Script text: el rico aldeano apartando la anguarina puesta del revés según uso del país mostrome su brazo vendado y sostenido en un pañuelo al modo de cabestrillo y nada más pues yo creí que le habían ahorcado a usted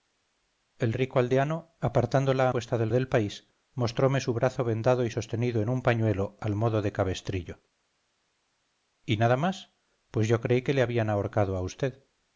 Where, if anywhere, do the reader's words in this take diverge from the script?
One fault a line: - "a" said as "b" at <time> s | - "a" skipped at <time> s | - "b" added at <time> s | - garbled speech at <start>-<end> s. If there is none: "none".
- "anguarina" skipped at 2.5 s
- "revés según uso" skipped at 2.9 s